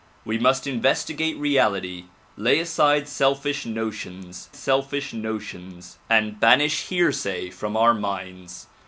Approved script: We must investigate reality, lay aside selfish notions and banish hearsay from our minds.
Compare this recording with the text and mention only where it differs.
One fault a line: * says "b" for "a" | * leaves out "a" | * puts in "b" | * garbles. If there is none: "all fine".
* puts in "selfish notions"